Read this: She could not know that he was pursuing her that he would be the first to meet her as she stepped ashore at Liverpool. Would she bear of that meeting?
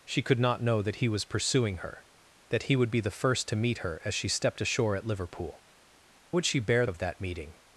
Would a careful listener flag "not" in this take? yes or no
no